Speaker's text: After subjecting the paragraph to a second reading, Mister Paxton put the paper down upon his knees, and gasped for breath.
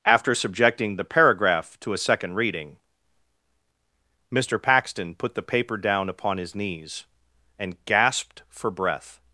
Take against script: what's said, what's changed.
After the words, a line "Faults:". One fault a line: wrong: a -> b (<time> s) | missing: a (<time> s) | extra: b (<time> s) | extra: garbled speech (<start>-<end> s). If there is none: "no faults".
After subjecting the paragraph to a second reading, Mister Paxton put the paper down upon his knees, and gasped for breath.
Faults:
no faults